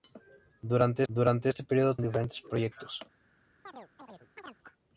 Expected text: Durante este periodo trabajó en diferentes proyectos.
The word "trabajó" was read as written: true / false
false